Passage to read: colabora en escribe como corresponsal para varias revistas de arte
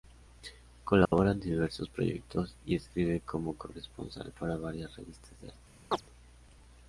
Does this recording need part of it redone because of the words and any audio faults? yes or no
yes